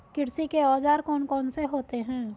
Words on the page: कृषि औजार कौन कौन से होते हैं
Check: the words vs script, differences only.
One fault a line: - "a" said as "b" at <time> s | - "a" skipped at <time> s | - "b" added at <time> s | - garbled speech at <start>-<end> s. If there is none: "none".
- "के" added at 0.5 s